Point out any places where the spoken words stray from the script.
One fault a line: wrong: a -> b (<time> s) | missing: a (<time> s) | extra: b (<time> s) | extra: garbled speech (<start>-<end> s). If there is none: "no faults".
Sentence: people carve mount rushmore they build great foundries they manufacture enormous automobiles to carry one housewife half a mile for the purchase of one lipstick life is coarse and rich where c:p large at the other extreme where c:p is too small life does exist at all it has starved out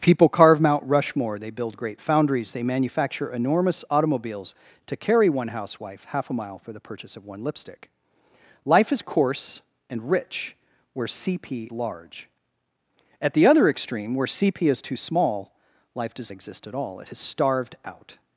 no faults